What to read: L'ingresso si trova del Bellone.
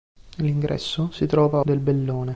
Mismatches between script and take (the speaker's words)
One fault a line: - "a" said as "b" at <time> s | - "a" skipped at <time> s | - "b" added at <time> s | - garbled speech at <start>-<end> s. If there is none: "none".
none